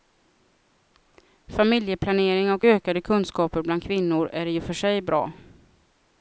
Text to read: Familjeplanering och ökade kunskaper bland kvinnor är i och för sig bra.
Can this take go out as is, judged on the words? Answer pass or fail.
pass